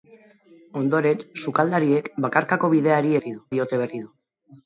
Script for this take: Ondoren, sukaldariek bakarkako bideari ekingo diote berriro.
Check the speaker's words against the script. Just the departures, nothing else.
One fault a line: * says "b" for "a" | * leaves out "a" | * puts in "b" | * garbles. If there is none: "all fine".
* says "berriro" for "ekingo"